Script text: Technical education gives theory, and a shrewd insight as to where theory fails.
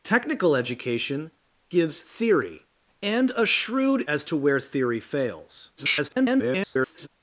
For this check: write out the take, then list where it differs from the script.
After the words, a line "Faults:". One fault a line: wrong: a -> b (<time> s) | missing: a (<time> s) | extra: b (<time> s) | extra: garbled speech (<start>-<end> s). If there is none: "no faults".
Technical education gives theory, and a shrewd as to where theory fails. [garbled]
Faults:
missing: insight (4.1 s)
extra: garbled speech (5.8-7.1 s)